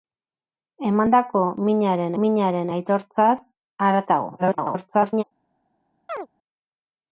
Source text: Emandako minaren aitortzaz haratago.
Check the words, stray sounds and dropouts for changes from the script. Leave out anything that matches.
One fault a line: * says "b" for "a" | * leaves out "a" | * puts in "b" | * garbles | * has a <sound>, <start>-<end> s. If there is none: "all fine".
* puts in "minaren"
* garbles
* has a chirp, 6.1-6.3 s